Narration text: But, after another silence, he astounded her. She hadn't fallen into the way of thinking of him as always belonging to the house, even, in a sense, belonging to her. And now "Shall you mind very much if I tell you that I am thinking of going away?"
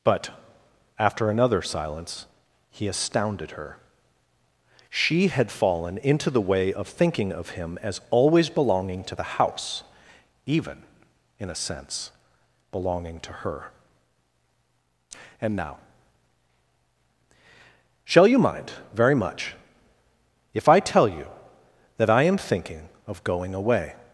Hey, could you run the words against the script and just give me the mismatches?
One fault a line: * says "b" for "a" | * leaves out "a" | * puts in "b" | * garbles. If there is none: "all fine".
* says "had" for "hadn't"